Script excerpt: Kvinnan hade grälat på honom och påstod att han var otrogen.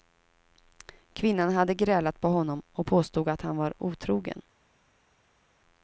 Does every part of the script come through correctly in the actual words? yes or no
yes